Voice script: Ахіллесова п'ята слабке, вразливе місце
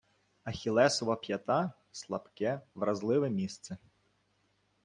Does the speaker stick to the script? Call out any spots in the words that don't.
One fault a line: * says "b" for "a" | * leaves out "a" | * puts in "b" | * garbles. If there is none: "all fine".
all fine